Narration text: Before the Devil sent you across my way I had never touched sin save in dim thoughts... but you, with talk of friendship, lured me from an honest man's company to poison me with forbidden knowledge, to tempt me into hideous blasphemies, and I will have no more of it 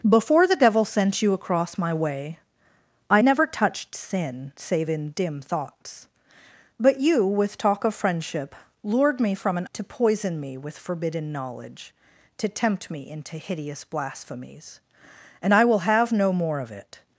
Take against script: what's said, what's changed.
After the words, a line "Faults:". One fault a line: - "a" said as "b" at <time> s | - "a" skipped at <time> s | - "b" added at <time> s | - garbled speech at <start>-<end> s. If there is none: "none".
Before the Devil sent you across my way I never touched sin save in dim thoughts... but you, with talk of friendship, lured me from an to poison me with forbidden knowledge, to tempt me into hideous blasphemies, and I will have no more of it
Faults:
- "had" skipped at 3.2 s
- "honest man's company" skipped at 9.7 s